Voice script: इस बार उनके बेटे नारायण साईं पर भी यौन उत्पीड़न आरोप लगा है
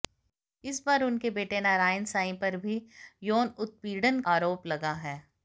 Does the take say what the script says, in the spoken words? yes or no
yes